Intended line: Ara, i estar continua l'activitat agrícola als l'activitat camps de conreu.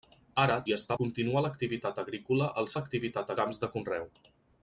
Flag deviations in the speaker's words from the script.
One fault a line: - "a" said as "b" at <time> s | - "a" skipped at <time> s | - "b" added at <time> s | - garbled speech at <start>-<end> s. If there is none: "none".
none